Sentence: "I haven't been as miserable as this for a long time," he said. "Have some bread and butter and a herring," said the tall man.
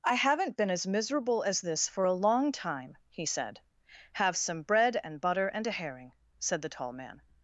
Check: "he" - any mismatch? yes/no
no